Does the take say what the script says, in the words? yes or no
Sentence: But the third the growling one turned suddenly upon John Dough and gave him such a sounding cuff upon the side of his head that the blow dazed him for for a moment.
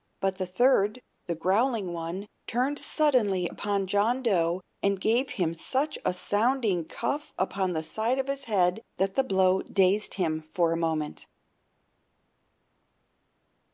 no